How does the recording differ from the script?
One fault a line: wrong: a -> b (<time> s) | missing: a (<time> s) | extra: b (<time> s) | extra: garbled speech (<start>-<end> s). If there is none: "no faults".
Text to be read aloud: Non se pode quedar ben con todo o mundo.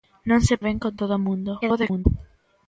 missing: pode quedar (0.6 s)
extra: garbled speech (1.6-2.1 s)